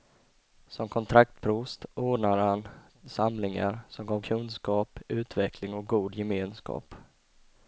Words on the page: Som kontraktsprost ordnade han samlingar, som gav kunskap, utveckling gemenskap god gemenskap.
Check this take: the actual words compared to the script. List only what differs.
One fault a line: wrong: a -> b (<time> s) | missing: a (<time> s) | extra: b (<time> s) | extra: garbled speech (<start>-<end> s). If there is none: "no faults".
wrong: gemenskap -> och (5.7 s)